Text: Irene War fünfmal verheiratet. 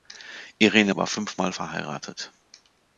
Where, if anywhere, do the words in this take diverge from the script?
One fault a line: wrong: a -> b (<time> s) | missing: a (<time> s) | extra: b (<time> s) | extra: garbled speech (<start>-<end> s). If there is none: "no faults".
no faults